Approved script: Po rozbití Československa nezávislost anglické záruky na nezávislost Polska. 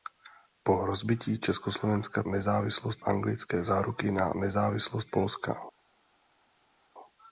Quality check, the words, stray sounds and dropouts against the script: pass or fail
pass